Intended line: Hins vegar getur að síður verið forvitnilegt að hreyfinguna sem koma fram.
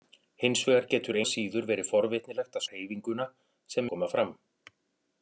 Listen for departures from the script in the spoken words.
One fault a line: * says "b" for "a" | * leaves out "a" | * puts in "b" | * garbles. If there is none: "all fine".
all fine